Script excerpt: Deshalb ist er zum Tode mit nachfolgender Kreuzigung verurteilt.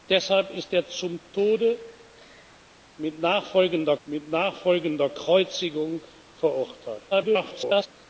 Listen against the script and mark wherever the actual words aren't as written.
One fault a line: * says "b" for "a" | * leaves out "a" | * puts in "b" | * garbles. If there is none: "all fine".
* puts in "mit nachfolgender"
* garbles